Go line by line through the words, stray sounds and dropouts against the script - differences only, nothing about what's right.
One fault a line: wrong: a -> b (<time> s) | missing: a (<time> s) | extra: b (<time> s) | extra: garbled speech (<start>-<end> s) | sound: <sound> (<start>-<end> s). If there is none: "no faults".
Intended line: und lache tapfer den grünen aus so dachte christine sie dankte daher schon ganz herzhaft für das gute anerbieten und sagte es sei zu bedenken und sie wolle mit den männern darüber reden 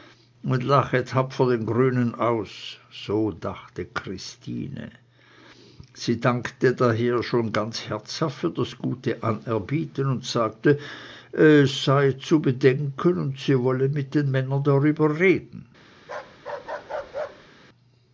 sound: bark (16.0-17.5 s)